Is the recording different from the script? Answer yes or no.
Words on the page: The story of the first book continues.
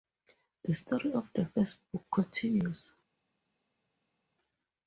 no